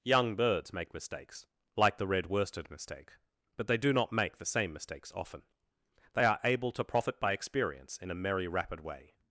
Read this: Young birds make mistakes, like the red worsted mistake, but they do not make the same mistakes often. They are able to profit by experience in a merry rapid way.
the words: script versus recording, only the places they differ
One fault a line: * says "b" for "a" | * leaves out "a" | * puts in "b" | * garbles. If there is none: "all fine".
all fine